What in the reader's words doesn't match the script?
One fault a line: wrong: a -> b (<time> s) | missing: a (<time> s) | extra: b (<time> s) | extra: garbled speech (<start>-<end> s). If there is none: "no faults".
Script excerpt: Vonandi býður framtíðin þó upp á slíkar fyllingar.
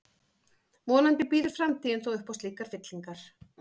no faults